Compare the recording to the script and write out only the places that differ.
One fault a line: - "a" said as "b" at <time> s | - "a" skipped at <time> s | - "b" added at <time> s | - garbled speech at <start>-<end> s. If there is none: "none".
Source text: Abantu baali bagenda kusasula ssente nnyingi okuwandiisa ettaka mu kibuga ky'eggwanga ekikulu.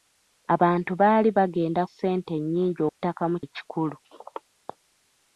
- "kusasula" skipped at 1.8 s
- "okuwandiisa" skipped at 2.8 s
- "kibuga ky'eggwanga" skipped at 3.4 s